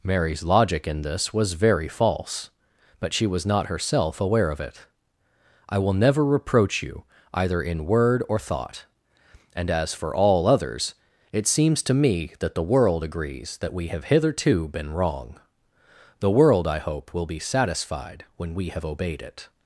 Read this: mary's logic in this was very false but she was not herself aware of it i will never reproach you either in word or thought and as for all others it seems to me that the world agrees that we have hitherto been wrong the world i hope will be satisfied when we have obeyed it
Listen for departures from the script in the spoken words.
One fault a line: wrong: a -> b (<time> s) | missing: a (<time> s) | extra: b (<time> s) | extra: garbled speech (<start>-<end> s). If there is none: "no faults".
no faults